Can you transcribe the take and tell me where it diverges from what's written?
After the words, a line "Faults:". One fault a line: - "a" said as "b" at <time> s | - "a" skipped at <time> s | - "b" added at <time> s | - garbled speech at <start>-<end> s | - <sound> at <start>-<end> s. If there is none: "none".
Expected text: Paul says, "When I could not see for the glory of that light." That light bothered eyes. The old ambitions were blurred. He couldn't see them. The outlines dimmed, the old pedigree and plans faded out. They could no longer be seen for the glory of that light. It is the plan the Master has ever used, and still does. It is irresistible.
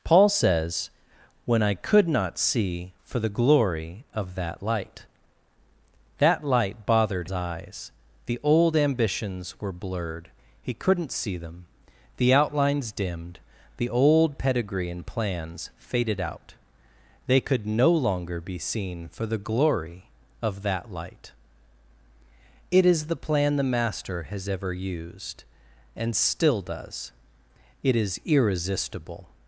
Paul says, "When I could not see for the glory of that light." That light bothered eyes. The old ambitions were blurred. He couldn't see them. The outlines dimmed, the old pedigree and plans faded out. They could no longer be seen for the glory of that light. It is the plan the Master has ever used, and still does. It is irresistible.
Faults:
none